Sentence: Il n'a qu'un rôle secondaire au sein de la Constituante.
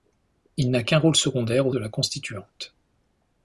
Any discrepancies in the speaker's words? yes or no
yes